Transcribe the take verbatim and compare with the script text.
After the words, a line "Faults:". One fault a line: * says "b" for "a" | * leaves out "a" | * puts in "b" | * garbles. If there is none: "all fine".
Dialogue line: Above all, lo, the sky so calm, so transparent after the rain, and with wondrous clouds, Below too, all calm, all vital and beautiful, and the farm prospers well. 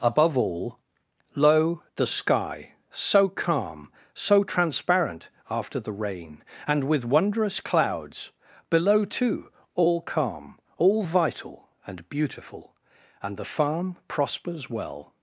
Above all, lo, the sky so calm, so transparent after the rain, and with wondrous clouds, Below too, all calm, all vital and beautiful, and the farm prospers well.
Faults:
all fine